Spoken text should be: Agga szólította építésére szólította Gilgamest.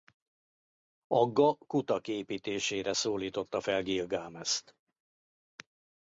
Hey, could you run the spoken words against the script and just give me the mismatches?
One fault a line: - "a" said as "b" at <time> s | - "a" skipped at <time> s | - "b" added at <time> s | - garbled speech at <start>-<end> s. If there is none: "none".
- "szólította" said as "kutak" at 1.6 s
- "fel" added at 3.6 s